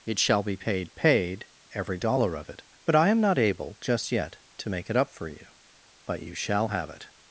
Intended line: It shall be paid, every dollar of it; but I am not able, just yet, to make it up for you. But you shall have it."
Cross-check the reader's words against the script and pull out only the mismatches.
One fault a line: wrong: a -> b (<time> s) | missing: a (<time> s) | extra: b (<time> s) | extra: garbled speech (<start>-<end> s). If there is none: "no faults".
extra: paid (0.9 s)